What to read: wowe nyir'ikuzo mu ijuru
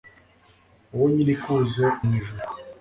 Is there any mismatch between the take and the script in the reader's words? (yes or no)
no